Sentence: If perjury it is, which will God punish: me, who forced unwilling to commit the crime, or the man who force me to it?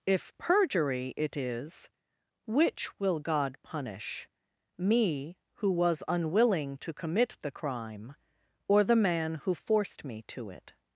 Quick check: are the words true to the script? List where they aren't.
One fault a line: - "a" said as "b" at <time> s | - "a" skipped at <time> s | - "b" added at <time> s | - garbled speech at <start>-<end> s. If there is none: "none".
- "forced" said as "was" at 5.7 s
- "force" said as "forced" at 9.5 s